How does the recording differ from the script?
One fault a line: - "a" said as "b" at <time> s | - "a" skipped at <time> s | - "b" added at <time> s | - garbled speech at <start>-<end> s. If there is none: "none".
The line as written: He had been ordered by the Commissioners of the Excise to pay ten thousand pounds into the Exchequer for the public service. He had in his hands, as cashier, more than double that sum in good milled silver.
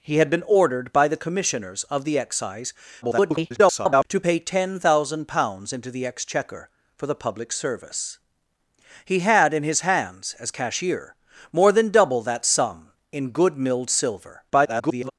- garbled speech at 3.0-4.1 s
- garbled speech at 14.5-15.1 s